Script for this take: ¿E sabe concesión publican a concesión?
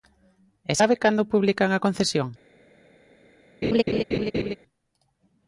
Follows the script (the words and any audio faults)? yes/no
no